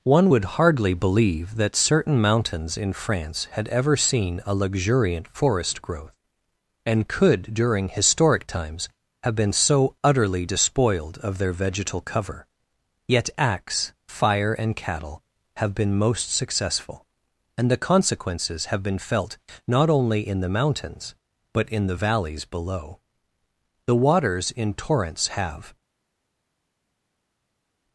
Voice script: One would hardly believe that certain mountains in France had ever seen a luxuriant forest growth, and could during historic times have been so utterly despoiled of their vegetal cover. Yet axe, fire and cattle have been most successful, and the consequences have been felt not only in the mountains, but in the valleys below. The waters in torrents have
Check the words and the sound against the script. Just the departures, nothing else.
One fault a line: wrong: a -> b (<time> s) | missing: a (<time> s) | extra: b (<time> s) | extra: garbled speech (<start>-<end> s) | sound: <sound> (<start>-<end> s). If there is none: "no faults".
no faults